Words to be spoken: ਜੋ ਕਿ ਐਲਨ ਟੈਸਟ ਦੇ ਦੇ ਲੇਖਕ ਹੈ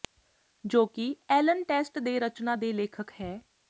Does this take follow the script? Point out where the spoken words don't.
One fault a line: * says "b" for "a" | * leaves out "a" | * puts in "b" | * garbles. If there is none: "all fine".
* puts in "ਰਚਨਾ"